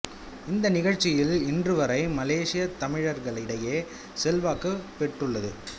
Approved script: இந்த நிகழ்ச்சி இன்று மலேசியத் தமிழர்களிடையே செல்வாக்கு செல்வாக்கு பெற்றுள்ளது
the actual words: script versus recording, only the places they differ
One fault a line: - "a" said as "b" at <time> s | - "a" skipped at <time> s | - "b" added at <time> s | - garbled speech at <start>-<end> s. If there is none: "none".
- "வரை" added at 1.7 s
- "செல்வாக்கு" skipped at 4.7 s